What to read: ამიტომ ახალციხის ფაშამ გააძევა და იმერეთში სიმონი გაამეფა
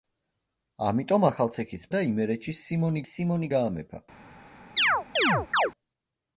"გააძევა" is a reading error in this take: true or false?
true